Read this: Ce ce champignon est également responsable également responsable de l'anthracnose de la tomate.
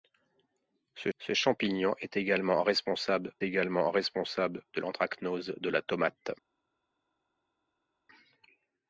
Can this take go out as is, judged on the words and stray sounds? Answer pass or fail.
pass